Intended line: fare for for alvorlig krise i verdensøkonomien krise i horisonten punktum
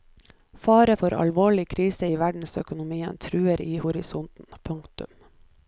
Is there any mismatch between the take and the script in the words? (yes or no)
yes